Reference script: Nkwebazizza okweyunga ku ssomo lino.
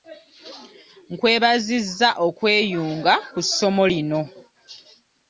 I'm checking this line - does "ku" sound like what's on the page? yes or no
yes